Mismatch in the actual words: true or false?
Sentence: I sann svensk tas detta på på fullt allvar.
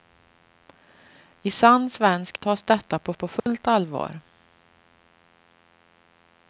false